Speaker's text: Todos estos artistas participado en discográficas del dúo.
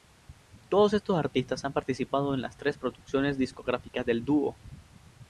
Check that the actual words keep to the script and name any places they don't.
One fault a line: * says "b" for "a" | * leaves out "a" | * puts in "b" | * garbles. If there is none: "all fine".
* puts in "han"
* puts in "las tres producciones"